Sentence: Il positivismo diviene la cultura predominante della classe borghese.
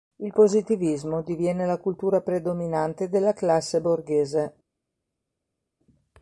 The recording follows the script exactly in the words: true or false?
true